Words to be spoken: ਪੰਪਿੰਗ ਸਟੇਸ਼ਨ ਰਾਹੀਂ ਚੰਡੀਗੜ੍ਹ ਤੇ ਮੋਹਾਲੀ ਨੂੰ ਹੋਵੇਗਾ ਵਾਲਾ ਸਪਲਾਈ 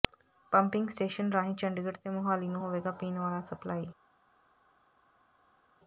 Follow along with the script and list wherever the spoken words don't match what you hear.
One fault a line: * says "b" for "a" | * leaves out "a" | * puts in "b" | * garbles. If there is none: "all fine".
* puts in "ਪੀਣ"